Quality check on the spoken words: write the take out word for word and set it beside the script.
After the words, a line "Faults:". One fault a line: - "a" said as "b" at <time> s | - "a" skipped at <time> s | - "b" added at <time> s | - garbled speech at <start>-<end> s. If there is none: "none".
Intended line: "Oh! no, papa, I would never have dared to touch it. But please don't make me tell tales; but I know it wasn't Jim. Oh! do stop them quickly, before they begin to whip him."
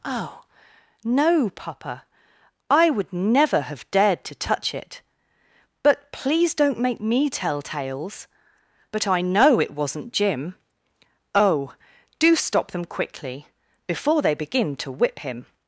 "Oh! no, papa, I would never have dared to touch it. But please don't make me tell tales; but I know it wasn't Jim. Oh! do stop them quickly, before they begin to whip him."
Faults:
none